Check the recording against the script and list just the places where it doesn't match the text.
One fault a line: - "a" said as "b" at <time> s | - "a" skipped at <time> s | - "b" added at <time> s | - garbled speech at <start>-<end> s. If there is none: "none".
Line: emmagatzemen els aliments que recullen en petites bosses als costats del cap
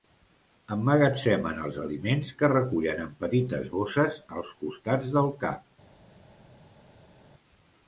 none